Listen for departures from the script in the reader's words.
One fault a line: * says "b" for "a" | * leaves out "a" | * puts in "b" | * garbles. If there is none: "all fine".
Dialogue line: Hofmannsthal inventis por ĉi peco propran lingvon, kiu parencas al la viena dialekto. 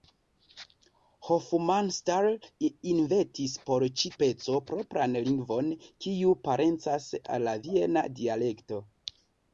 all fine